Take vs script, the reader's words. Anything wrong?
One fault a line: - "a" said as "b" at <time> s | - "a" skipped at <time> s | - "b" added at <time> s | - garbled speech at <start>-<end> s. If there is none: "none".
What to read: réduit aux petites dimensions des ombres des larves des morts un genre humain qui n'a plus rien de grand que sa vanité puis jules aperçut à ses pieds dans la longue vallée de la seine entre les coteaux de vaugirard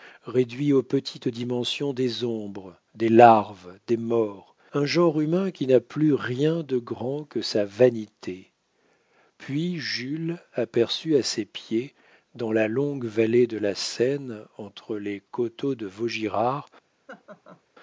none